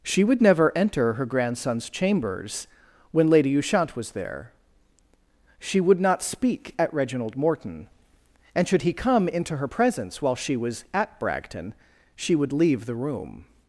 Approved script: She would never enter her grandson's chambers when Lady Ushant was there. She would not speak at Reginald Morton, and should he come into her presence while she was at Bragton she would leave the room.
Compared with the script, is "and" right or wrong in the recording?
right